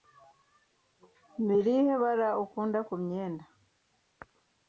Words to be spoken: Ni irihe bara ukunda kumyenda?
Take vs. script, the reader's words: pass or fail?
pass